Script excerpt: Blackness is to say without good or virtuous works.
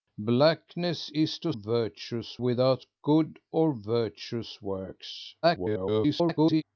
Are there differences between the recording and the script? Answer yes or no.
yes